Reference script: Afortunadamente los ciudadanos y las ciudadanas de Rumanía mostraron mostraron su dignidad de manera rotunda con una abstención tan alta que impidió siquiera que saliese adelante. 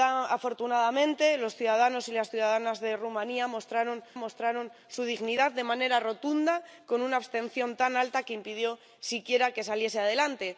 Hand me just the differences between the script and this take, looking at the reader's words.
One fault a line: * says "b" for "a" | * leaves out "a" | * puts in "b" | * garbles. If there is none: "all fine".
all fine